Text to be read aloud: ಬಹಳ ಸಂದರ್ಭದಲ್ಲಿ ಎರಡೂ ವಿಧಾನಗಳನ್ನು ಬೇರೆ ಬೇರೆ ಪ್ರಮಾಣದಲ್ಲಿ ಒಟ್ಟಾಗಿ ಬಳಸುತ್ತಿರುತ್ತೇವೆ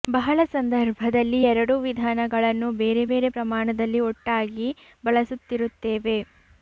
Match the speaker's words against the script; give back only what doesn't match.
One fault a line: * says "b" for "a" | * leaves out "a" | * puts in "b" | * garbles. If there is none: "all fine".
all fine